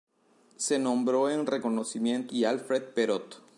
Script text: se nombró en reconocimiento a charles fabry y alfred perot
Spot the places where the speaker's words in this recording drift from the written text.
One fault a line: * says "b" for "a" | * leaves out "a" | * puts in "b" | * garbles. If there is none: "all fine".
* leaves out "a charles fabry"